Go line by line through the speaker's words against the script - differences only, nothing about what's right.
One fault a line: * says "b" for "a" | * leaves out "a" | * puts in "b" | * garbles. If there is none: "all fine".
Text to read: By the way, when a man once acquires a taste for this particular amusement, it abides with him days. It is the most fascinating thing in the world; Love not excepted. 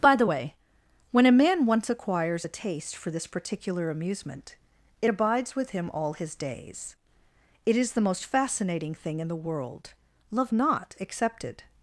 * puts in "all his"